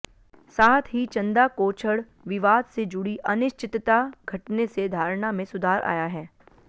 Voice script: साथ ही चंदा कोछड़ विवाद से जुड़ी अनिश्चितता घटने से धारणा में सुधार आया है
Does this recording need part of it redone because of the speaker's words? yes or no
no